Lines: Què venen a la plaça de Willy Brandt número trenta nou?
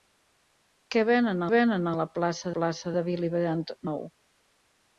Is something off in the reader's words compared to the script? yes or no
yes